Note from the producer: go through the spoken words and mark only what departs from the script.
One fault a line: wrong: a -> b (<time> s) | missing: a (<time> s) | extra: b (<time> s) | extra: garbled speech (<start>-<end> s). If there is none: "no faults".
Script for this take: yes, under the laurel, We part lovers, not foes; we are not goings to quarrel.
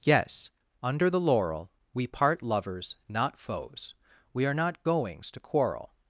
no faults